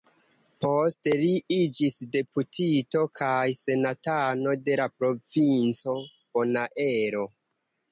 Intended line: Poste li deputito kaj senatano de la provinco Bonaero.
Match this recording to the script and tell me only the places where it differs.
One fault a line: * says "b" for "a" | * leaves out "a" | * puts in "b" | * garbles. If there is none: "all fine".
* puts in "iĝis"